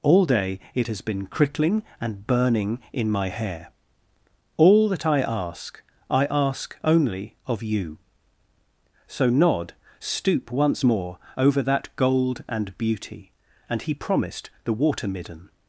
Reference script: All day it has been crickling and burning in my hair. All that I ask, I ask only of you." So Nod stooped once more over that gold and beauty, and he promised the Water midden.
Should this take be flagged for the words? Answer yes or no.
yes